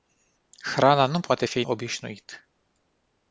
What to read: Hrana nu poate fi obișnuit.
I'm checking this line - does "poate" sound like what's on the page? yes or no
yes